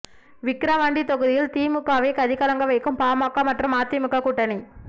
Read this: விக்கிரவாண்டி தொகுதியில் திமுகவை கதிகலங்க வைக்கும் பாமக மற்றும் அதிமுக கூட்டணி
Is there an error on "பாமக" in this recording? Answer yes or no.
no